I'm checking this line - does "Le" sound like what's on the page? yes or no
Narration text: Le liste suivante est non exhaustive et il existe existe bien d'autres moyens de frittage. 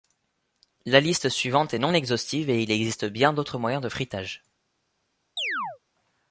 no